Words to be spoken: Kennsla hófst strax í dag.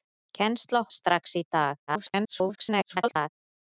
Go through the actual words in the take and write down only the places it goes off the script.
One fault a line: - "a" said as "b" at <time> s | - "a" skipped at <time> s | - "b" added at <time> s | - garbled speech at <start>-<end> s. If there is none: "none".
- "hófst" skipped at 0.8 s
- garbled speech at 1.9-3.3 s